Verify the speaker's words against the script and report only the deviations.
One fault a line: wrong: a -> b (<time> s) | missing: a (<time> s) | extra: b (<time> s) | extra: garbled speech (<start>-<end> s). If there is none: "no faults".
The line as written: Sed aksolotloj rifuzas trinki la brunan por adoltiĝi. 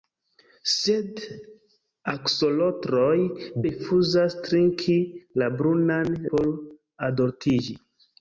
no faults